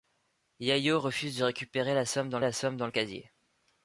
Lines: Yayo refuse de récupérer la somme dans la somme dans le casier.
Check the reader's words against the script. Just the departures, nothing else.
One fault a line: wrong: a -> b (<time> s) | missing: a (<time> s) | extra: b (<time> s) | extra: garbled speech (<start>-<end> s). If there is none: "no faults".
no faults